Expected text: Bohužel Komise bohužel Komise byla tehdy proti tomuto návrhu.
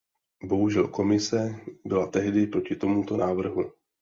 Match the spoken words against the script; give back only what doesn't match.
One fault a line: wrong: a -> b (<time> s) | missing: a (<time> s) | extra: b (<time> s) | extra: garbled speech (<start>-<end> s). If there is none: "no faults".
missing: bohužel Komise (1.6 s)